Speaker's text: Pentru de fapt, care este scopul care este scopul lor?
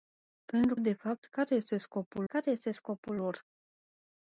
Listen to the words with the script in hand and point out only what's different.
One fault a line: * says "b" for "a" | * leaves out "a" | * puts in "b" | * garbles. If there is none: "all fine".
all fine